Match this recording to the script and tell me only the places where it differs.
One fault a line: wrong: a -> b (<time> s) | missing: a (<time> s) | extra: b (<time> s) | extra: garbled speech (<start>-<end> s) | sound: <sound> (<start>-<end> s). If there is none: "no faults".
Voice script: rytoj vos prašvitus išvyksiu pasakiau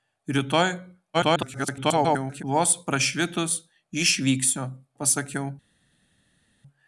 extra: garbled speech (1.1-2.4 s)